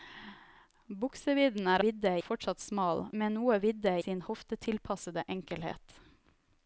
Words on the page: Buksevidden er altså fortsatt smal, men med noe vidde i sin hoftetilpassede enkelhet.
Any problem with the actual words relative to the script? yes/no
yes